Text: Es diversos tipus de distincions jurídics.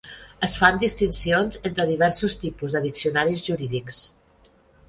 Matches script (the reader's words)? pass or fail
fail